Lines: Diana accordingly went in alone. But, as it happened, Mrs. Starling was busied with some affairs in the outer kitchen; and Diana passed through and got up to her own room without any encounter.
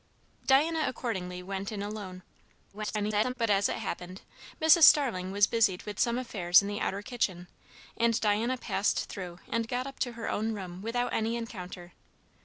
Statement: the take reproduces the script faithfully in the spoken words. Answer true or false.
false